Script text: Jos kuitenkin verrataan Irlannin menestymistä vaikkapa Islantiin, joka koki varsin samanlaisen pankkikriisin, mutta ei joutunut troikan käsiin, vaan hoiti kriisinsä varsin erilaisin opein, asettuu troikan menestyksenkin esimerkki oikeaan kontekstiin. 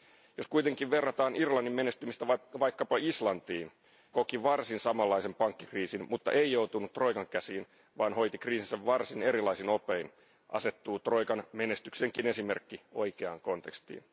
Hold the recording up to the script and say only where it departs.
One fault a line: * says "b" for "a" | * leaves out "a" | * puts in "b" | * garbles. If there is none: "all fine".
* leaves out "joka"